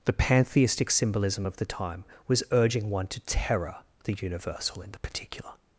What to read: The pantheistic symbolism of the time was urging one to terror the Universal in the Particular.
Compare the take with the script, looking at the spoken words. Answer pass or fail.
pass